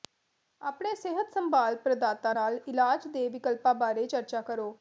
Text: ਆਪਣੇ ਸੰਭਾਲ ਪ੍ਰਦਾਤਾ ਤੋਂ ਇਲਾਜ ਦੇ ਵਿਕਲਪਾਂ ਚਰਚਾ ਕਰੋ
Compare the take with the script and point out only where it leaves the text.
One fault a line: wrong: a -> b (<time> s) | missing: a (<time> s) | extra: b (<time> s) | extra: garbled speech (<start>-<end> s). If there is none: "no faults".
extra: ਸਿਹਤ (0.9 s)
wrong: ਤੋਂ -> ਨਾਲ (2.3 s)
extra: ਬਾਰੇ (3.7 s)